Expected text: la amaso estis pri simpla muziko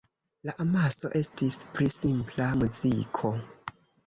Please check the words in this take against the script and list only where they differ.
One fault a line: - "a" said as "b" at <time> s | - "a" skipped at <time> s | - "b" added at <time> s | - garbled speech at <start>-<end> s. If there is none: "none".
none